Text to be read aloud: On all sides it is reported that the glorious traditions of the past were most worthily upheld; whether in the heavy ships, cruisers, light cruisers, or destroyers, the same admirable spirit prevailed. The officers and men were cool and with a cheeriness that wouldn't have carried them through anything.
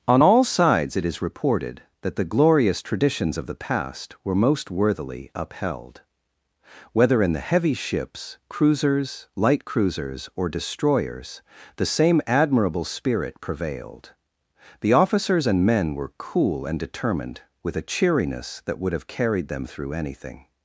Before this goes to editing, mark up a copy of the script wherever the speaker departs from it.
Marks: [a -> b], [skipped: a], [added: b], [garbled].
On all sides it is reported that the glorious traditions of the past were most worthily upheld; whether in the heavy ships, cruisers, light cruisers, or destroyers, the same admirable spirit prevailed. The officers and men were cool and [added: determined] with a cheeriness that [wouldn't -> would] have carried them through anything.